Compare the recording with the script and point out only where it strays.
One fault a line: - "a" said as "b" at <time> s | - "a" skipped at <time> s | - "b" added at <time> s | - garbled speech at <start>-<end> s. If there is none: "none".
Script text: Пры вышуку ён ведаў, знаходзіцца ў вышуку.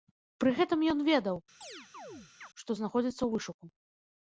- "вышуку" said as "гэтым" at 0.6 s
- "што" added at 2.6 s